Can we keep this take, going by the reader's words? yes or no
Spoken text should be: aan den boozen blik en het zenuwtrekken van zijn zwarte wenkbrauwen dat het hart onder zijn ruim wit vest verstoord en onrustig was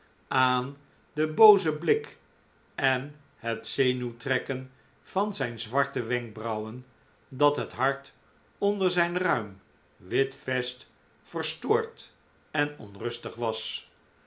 yes